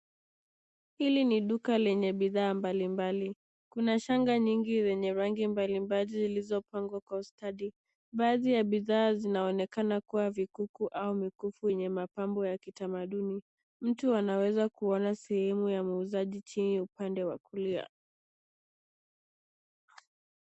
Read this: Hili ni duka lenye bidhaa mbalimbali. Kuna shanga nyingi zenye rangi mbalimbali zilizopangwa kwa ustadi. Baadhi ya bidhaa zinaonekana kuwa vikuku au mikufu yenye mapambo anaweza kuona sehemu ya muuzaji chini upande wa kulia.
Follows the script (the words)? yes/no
no